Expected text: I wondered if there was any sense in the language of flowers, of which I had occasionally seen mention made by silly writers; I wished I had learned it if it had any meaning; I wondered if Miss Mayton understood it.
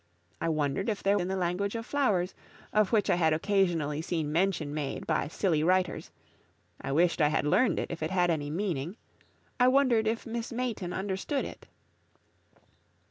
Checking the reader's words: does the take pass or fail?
fail